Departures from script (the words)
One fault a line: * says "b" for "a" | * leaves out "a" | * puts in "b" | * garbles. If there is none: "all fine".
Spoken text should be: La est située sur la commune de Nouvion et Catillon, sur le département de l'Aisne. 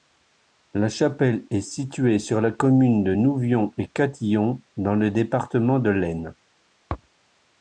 * puts in "chapelle"
* says "dans" for "sur"